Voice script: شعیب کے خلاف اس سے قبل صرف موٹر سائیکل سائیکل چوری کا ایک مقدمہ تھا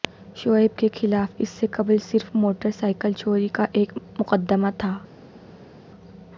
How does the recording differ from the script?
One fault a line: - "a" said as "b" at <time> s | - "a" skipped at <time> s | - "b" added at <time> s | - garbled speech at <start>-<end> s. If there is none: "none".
- "سائیکل" skipped at 3.1 s